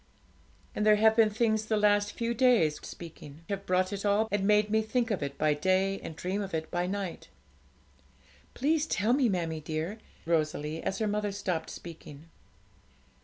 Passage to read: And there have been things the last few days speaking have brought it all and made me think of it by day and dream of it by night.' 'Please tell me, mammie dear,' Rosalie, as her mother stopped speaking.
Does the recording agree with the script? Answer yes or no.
yes